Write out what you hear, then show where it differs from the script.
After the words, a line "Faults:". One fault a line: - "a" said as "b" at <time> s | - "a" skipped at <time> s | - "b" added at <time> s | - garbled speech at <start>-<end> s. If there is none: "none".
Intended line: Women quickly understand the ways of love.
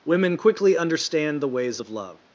Women quickly understand the ways of love.
Faults:
none